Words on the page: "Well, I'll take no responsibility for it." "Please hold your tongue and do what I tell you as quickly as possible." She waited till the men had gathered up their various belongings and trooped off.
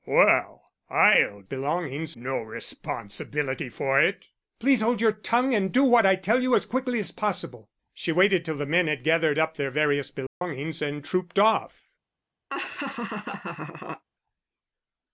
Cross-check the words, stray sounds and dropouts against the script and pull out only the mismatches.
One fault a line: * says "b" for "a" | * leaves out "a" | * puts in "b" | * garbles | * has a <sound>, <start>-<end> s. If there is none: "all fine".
* says "belongings" for "take"
* has a dropout, 10.3-10.4 s
* has a laugh, 12.5-14.0 s